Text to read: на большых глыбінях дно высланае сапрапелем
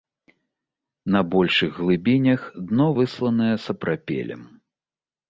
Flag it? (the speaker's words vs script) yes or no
no